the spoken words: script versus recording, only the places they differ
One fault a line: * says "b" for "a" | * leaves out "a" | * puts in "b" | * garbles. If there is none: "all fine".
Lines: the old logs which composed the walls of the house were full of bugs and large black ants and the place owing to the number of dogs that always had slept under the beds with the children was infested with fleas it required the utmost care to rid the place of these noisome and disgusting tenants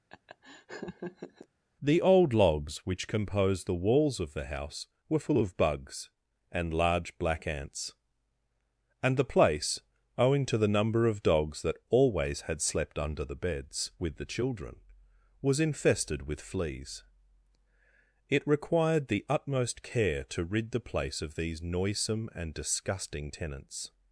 all fine